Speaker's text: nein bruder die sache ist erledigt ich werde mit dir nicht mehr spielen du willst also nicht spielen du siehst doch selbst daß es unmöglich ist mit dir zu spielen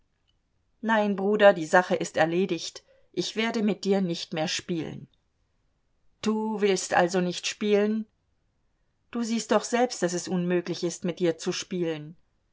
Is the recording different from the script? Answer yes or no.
no